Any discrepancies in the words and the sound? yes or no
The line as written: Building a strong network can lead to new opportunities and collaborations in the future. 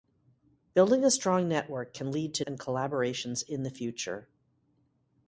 yes